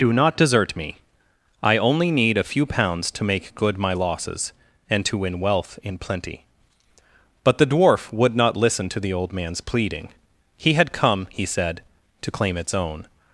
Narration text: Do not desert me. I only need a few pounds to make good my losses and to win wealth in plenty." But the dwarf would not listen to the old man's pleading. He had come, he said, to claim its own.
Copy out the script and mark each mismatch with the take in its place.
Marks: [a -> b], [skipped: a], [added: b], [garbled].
Do not desert me. I only need a few pounds to make good my losses and to win wealth in plenty." But the dwarf would not listen to the old man's pleading. He had come, he said, to claim its own.